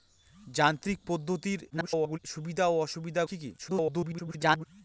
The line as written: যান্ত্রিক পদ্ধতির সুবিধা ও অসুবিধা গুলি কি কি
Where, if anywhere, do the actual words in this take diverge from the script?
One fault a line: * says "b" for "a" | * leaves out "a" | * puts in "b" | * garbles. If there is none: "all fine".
* garbles
* leaves out "গুলি"
* garbles